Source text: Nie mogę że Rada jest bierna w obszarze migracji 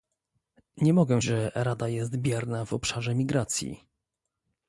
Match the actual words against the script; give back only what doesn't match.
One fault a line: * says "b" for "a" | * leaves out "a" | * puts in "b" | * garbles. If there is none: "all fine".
all fine